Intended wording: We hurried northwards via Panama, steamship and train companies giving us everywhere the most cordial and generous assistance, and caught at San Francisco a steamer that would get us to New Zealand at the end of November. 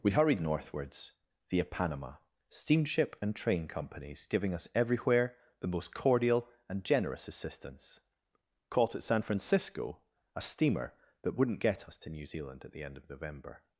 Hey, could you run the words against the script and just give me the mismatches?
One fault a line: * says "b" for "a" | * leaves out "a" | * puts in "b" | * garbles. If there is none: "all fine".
* leaves out "and"
* says "wouldn't" for "would"